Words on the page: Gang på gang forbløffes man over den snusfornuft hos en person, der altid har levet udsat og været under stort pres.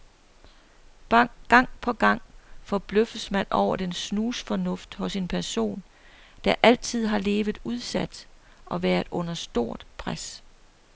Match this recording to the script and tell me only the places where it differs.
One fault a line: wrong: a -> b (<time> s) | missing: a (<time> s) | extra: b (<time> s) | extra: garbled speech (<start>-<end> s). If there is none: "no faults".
no faults